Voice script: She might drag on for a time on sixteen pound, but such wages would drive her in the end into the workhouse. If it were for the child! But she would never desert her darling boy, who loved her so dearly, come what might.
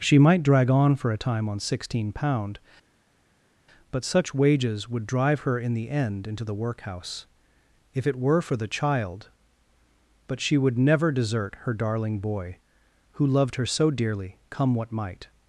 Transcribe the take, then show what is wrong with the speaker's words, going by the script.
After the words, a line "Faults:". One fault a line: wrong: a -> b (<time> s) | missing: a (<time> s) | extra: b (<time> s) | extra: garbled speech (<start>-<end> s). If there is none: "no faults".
She might drag on for a time on sixteen pound, but such wages would drive her in the end into the workhouse. If it were for the child! But she would never desert her darling boy, who loved her so dearly, come what might.
Faults:
no faults